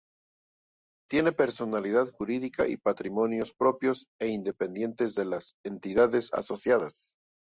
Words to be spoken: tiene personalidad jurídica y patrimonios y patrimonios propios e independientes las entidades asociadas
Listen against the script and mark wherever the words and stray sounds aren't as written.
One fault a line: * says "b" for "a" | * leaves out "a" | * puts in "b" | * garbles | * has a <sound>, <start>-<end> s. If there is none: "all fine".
* leaves out "y patrimonios"
* puts in "de"